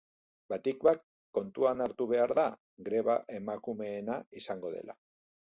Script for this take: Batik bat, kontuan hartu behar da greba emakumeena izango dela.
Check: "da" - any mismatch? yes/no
no